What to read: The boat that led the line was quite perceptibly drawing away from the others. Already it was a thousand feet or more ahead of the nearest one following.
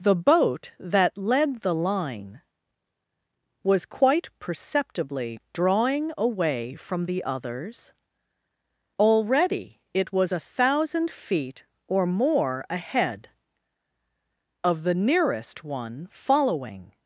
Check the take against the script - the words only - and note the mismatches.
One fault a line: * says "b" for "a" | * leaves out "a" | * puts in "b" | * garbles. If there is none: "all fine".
all fine